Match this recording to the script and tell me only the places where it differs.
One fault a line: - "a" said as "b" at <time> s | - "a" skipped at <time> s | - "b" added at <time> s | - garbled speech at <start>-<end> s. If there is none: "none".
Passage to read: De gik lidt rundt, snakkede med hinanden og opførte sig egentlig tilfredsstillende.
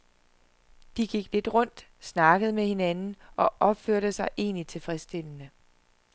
none